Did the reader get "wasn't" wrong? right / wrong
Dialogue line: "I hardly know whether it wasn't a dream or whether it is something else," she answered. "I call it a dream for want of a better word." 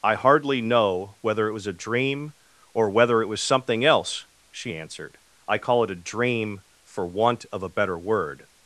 wrong